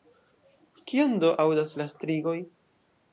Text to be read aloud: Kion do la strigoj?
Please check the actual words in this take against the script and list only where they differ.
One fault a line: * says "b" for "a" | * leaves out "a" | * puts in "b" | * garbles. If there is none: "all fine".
* puts in "aŭdas"